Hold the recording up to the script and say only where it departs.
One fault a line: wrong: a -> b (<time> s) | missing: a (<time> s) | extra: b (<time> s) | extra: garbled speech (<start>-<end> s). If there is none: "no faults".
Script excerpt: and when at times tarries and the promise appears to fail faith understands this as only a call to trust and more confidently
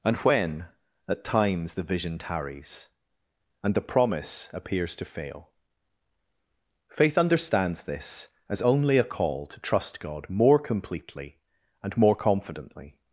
extra: the vision (1.7 s)
extra: god more completely (10.0 s)